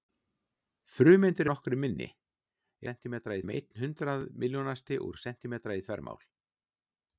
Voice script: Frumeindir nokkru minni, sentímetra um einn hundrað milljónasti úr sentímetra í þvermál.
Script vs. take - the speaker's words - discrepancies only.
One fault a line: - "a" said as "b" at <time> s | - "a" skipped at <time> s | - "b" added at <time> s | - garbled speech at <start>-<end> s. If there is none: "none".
none